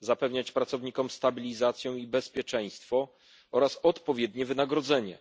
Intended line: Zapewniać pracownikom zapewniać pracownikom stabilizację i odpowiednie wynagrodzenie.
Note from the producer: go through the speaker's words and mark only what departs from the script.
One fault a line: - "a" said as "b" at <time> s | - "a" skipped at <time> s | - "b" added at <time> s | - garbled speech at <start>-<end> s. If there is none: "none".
- "zapewniać pracownikom stabilizację i" said as "stabilizację i bezpieczeństwo oraz" at 1.1 s